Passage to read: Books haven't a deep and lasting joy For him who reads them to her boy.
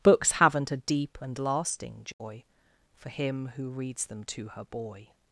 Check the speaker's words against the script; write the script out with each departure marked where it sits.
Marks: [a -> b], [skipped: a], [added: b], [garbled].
Books haven't a deep and lasting joy For him who reads them to her boy.